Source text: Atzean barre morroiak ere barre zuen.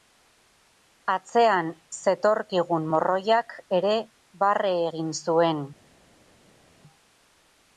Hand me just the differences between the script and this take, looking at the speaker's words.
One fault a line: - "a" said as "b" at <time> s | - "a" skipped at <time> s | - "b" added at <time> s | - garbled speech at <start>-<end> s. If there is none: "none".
- "barre" said as "zetorkigun" at 2.0 s
- "egin" added at 4.9 s